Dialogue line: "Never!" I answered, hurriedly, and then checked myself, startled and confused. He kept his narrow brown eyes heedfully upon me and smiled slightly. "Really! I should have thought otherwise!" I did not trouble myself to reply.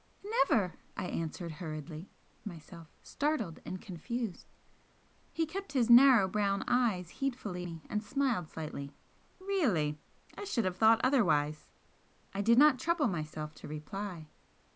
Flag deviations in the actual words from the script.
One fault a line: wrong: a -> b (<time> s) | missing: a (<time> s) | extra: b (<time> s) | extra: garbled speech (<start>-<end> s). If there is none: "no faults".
missing: and then checked (2.1 s)
missing: upon (7.7 s)